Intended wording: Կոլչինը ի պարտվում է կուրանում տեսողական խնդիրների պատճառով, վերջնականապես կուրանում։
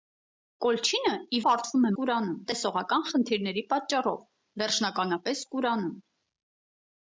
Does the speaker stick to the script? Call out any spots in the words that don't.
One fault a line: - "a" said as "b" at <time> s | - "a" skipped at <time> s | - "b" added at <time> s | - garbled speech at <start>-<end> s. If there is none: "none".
none